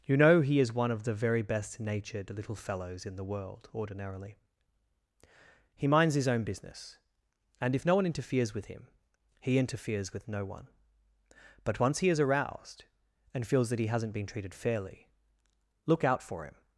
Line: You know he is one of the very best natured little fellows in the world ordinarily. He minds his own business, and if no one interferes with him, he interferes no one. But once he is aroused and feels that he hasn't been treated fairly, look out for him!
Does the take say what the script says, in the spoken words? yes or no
no